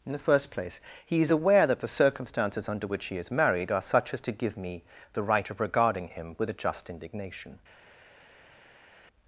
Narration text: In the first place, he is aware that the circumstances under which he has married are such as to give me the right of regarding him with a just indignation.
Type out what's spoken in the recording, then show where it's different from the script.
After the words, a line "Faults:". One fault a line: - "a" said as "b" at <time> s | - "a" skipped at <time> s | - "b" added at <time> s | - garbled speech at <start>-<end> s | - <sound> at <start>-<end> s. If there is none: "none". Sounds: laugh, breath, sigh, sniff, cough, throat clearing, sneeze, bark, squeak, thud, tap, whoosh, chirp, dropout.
In the first place, he is aware that the circumstances under which he is married are such as to give me the right of regarding him with a just indignation.
Faults:
- "has" said as "is" at 3.2 s